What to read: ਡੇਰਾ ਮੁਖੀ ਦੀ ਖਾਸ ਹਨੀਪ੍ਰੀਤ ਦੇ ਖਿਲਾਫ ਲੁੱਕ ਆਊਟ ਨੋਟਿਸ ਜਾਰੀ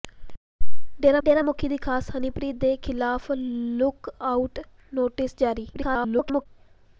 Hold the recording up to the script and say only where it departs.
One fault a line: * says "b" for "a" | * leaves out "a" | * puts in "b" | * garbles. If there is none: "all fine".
* puts in "ਡੇਰਾ"
* garbles